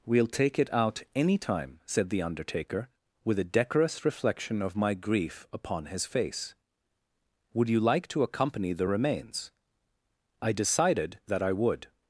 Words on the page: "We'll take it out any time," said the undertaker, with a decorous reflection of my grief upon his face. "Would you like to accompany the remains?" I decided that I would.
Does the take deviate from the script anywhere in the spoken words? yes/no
no